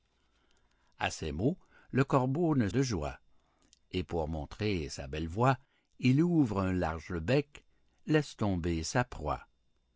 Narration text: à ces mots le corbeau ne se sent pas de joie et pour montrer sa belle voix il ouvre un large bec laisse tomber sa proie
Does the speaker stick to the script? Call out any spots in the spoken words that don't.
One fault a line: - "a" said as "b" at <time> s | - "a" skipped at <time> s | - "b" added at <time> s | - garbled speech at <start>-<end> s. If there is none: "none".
- "se sent pas" skipped at 2.7 s